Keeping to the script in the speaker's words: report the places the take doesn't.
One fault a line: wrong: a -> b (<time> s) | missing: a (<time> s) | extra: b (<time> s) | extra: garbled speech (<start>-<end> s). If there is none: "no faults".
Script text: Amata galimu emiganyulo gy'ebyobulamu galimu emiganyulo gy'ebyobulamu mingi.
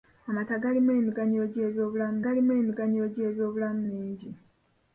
no faults